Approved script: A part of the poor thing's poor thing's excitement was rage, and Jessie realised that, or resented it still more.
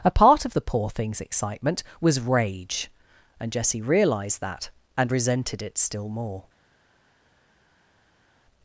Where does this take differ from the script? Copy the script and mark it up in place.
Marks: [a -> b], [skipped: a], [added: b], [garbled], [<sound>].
A part of the poor thing's [skipped: poor thing's] excitement was rage, and Jessie realised that, [or -> and] resented it still more.